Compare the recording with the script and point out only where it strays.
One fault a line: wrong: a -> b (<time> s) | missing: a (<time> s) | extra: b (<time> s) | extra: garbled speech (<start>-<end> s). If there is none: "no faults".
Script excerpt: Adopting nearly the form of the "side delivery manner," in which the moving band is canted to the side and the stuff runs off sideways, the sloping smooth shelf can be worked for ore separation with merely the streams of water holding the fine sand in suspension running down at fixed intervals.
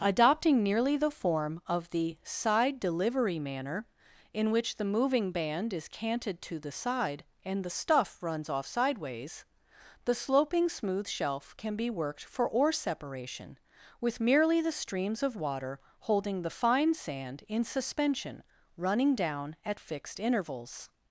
no faults